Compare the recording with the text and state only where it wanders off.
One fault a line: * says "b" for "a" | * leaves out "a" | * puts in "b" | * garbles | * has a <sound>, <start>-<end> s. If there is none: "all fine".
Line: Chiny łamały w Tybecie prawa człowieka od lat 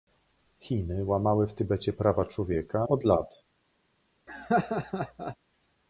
* has a laugh, 4.3-5.4 s